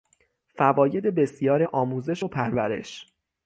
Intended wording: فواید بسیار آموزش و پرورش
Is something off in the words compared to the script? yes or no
no